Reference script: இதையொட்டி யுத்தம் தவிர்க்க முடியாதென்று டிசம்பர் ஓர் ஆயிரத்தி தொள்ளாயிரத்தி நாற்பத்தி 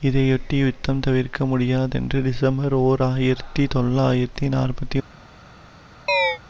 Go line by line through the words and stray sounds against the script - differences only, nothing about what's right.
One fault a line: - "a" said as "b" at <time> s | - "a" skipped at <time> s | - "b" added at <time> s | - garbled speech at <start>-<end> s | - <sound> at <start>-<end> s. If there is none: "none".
- chirp at 6.1-6.4 s